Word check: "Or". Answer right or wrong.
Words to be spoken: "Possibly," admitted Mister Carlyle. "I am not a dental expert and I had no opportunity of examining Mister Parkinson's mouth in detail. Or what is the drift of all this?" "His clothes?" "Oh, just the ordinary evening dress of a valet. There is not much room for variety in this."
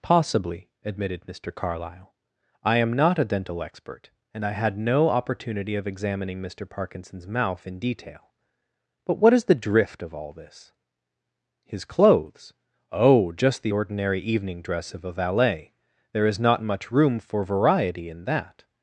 wrong